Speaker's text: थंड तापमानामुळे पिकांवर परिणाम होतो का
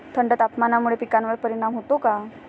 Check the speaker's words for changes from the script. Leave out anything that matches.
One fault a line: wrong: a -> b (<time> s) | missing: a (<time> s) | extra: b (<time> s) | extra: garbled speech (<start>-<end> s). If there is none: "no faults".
no faults